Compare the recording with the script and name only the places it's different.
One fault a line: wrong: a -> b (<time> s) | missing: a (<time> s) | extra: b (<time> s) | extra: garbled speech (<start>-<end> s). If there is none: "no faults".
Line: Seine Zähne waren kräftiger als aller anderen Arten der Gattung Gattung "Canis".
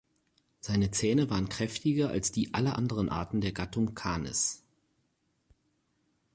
extra: die (2.3 s)
missing: Gattung (3.9 s)